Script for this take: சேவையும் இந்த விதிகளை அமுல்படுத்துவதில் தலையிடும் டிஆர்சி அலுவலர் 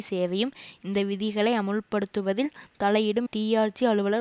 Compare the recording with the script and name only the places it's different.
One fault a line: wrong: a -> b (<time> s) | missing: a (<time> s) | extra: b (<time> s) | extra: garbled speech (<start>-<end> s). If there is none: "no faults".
no faults